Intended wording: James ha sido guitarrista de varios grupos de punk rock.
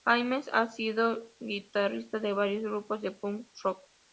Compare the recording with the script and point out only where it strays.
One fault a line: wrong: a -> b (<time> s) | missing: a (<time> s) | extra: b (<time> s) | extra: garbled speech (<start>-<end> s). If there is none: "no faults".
no faults